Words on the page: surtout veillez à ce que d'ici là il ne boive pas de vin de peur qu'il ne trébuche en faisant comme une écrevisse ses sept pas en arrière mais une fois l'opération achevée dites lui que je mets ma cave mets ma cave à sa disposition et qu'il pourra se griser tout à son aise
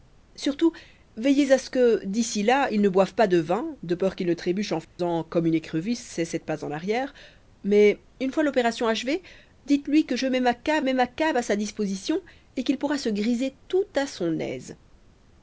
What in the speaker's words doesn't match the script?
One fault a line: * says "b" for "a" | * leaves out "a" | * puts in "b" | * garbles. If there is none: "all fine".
all fine